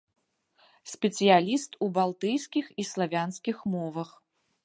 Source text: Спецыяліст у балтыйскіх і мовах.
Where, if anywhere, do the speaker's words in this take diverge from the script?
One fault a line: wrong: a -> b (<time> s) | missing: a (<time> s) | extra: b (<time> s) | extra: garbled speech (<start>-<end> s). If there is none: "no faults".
extra: славянскіх (2.9 s)